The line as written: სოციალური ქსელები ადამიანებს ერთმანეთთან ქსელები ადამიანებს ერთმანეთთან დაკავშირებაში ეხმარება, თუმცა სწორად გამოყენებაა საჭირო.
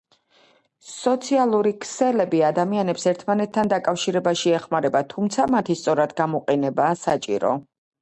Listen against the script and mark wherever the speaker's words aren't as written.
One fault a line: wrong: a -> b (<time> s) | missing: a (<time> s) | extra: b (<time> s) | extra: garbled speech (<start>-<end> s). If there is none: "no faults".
missing: ქსელები ადამიანებს ერთმანეთთან (3.7 s)
extra: მათი (5.6 s)